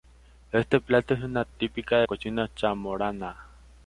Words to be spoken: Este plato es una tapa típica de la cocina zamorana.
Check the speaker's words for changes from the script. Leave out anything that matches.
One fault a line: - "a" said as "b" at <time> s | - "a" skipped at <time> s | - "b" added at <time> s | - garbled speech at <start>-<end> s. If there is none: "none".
- "tapa" skipped at 1.4 s
- "la" skipped at 2.1 s